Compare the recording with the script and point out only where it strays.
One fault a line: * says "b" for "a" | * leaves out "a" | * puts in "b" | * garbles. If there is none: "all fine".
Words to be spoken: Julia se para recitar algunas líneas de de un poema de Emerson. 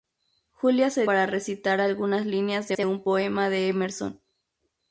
all fine